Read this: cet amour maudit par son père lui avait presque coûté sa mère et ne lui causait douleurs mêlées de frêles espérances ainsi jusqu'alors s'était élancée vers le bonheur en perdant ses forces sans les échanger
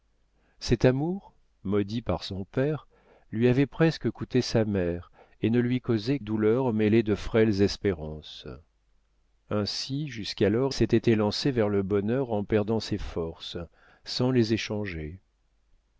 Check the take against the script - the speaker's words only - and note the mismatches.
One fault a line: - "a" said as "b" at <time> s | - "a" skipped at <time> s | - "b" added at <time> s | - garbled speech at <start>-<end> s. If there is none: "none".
none